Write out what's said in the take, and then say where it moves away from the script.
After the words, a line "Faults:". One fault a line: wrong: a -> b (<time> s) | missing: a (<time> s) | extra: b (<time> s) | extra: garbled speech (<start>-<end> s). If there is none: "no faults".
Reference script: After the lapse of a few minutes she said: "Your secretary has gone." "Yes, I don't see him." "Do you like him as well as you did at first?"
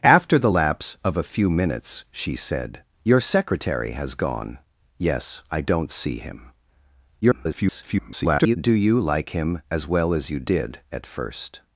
After the lapse of a few minutes she said: "Your secretary has gone." "Yes, I don't see him." [garbled] "Do you like him as well as you did at first?"
Faults:
extra: garbled speech (7.2-8.6 s)